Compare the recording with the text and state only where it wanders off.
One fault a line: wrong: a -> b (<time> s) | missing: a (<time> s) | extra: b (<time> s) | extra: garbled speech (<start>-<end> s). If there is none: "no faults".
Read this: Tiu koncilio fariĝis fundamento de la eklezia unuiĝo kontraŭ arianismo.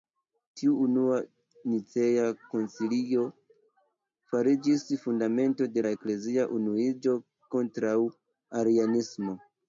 extra: unua Nicea (0.8 s)